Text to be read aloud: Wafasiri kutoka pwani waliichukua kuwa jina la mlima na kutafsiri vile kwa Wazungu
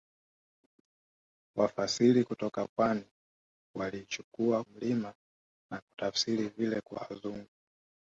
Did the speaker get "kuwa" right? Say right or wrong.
wrong